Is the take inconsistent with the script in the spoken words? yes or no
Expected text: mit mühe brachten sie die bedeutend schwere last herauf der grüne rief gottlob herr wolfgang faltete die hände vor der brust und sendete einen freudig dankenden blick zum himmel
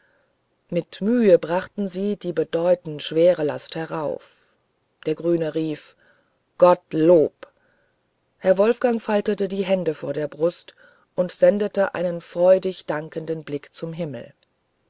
no